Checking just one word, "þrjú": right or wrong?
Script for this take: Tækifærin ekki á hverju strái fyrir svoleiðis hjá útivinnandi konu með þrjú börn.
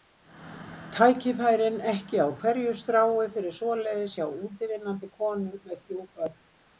right